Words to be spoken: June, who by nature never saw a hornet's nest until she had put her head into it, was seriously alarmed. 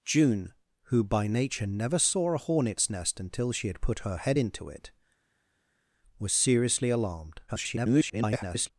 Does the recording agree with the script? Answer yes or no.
no